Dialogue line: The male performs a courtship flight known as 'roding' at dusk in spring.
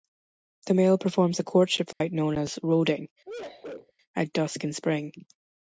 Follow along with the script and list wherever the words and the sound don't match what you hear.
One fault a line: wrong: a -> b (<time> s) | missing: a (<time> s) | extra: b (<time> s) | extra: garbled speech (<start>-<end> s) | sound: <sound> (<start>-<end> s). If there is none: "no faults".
sound: dropout (1.9-2.0 s)
sound: sneeze (3.2-3.9 s)